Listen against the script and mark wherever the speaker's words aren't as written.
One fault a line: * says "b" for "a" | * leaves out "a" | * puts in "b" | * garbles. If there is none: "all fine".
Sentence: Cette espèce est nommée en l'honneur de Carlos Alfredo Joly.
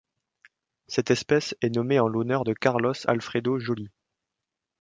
all fine